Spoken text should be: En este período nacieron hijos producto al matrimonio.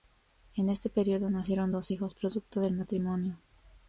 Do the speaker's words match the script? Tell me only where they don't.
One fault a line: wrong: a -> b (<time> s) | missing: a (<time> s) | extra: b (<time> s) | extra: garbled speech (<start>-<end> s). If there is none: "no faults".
extra: dos (1.7 s)
wrong: al -> del (2.6 s)